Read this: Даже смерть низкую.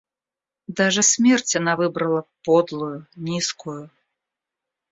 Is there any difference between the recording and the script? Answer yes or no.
yes